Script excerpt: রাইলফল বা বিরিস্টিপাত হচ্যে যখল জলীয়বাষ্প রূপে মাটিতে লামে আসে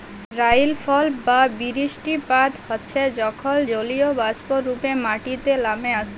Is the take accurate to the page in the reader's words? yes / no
yes